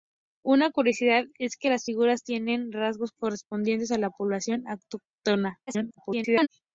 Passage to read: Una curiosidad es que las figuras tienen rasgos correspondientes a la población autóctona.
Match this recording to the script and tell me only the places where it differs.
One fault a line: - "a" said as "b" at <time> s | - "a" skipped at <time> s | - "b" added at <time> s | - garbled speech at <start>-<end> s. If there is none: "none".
- garbled speech at 5.7-6.5 s